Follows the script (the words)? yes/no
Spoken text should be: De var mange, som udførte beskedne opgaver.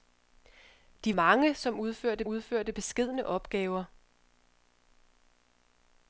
no